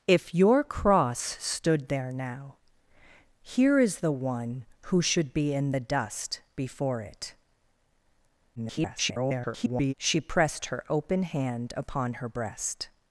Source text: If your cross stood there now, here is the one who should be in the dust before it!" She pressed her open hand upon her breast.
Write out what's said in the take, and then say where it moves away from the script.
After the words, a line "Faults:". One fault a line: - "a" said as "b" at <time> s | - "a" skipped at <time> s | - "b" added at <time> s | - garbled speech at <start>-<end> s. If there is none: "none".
If your cross stood there now, here is the one who should be in the dust before it!" [garbled] She pressed her open hand upon her breast.
Faults:
- garbled speech at 8.6-9.9 s